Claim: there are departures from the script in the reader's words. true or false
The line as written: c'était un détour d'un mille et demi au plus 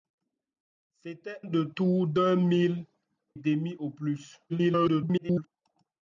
true